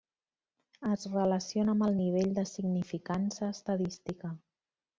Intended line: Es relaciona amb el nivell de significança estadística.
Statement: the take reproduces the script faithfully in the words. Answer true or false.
true